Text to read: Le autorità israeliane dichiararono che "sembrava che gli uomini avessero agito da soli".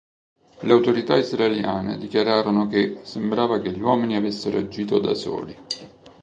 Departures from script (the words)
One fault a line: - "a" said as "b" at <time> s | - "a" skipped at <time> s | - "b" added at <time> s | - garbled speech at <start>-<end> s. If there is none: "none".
none